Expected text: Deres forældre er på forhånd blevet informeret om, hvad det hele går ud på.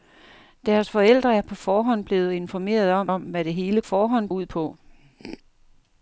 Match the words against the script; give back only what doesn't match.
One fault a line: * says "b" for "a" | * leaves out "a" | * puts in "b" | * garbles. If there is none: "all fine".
* puts in "om"
* says "forhånd" for "går"